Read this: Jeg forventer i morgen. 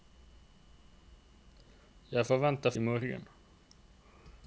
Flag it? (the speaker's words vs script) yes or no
no